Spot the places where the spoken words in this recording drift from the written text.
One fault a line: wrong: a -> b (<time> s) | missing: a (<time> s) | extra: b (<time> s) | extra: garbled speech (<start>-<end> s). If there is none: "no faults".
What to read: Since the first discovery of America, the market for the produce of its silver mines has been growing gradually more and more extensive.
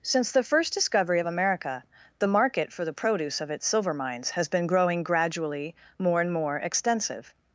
no faults